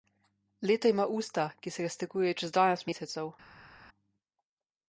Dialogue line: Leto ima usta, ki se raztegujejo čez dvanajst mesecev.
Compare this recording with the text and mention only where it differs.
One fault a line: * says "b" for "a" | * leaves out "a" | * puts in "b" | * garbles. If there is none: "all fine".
all fine